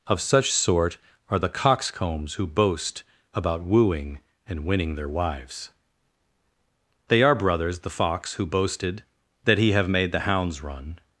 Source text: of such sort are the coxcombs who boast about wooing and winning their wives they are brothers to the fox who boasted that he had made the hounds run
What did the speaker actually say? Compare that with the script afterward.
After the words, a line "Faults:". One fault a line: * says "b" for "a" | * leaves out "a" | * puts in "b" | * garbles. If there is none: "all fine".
of such sort are the coxcombs who boast about wooing and winning their wives they are brothers the fox who boasted that he have made the hounds run
Faults:
* leaves out "to"
* says "have" for "had"